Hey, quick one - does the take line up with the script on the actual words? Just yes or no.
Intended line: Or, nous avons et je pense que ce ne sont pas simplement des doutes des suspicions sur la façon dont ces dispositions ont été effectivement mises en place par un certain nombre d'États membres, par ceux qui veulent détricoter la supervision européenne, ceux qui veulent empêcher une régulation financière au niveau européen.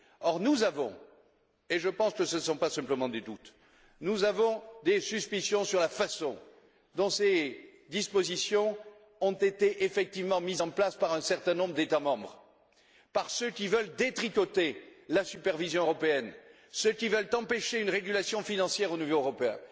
yes